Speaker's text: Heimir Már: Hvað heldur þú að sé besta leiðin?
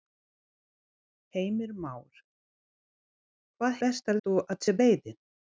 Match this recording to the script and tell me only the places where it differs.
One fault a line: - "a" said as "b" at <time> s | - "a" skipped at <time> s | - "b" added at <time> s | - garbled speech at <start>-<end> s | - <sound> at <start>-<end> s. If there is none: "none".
- "heldur" said as "besta" at 3.8 s
- "besta" skipped at 4.8 s